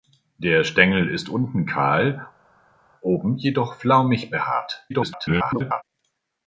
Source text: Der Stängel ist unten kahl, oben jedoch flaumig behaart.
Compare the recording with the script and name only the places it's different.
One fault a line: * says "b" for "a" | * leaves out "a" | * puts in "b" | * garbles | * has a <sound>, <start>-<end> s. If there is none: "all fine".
* garbles